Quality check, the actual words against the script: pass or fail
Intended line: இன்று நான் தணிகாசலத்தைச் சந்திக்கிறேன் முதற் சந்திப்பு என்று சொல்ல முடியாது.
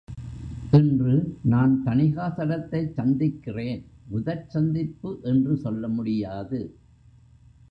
pass